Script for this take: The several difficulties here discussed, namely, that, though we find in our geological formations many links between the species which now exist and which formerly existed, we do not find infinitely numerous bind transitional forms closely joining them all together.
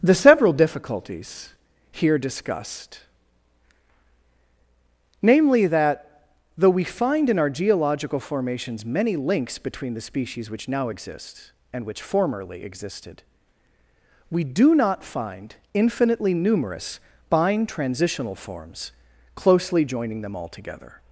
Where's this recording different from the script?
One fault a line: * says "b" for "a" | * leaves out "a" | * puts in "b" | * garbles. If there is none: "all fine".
all fine